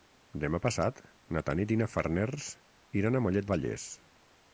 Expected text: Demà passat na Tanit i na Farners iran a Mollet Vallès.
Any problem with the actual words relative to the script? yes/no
no